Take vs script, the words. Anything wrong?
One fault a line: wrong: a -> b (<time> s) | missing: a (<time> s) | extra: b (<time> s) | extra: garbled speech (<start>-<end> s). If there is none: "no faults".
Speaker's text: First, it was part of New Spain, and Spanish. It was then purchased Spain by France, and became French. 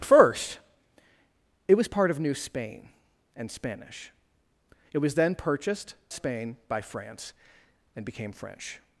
no faults